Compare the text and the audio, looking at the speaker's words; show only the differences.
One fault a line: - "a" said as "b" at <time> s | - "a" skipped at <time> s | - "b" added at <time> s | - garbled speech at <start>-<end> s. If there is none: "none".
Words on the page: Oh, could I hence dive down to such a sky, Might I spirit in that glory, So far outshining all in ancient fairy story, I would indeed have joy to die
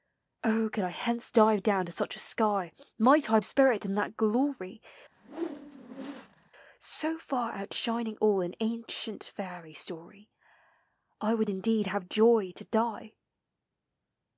none